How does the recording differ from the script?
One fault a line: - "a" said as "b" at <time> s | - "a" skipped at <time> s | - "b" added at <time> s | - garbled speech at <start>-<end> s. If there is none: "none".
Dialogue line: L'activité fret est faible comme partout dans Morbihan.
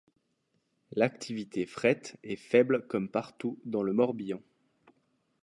- "le" added at 3.8 s